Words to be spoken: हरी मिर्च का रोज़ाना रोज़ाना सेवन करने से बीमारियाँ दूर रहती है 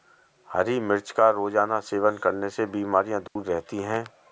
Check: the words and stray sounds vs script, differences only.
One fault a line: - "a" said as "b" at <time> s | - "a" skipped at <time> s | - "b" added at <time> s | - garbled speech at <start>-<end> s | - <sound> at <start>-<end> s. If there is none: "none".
- "रोज़ाना" skipped at 1.8 s
- dropout at 3.3-3.4 s